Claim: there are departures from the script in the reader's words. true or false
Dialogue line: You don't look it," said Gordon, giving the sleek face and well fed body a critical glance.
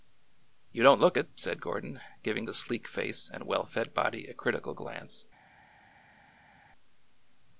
false